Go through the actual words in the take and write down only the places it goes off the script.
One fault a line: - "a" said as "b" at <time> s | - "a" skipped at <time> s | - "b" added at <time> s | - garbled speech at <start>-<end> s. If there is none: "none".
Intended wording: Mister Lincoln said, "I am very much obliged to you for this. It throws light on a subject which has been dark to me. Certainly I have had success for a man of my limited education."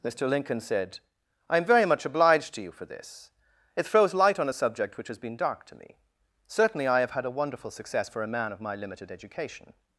- "a wonderful" added at 7.3 s